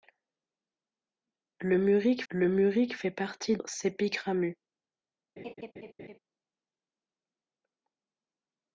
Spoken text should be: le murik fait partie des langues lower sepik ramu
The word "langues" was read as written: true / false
false